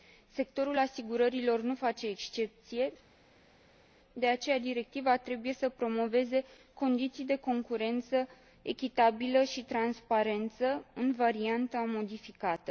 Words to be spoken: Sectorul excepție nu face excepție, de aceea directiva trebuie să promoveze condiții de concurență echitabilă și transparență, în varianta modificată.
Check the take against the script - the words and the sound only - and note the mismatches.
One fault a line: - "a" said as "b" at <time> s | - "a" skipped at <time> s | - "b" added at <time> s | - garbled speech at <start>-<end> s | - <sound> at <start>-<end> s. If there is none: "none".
- "excepție" said as "asigurărilor" at 0.8 s